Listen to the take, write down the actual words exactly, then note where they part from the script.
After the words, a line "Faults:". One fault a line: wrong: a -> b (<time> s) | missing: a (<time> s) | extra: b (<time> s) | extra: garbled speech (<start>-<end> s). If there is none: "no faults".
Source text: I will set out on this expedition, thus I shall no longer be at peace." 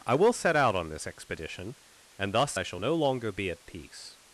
I will set out on this expedition, and thus I shall no longer be at peace."
Faults:
extra: and (2.2 s)